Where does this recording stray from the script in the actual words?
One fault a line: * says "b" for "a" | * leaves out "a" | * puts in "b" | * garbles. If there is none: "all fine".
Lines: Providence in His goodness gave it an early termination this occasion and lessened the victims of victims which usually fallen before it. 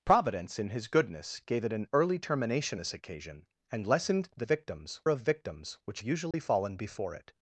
all fine